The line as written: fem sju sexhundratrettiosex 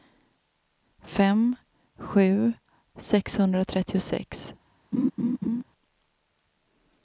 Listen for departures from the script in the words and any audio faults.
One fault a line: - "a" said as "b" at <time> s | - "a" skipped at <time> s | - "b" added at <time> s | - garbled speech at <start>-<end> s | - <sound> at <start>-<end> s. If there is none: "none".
- laugh at 4.9-5.6 s